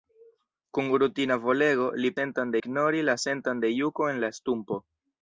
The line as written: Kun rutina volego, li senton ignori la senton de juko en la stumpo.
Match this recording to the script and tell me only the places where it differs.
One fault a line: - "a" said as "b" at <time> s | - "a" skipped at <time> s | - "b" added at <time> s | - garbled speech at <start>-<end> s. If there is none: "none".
none